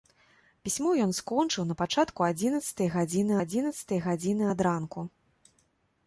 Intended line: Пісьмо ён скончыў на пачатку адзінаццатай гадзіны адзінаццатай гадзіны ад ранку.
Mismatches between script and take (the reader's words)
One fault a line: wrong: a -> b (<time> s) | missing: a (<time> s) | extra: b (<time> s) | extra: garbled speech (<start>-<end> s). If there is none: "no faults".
no faults